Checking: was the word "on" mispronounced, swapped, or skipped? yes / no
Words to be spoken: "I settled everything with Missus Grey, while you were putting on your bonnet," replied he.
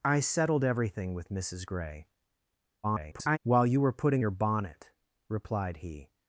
yes